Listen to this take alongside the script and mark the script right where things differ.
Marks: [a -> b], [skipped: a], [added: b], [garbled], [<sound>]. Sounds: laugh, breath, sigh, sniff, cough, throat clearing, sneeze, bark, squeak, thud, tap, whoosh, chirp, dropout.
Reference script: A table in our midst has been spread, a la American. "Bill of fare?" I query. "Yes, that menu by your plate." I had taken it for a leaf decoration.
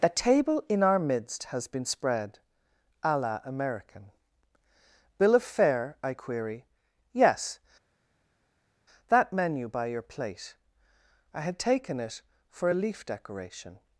[A -> The] table in our midst has been spread, a la American. "Bill of fare?" I query. "Yes, that menu by your plate." I had taken it for a leaf decoration.